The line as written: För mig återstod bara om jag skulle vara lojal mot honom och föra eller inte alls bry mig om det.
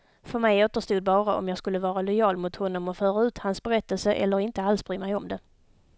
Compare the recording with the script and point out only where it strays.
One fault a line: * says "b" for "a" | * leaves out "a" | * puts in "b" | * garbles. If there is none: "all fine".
* puts in "ut hans berättelse"